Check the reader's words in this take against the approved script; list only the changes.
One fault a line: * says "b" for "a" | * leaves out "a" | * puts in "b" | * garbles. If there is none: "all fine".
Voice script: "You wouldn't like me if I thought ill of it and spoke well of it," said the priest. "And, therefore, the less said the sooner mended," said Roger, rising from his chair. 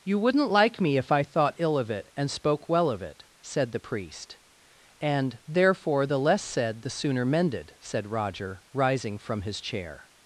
all fine